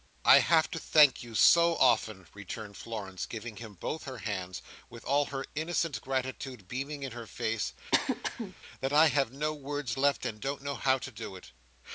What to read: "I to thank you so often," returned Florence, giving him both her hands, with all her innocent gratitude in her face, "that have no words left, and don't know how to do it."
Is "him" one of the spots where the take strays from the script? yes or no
no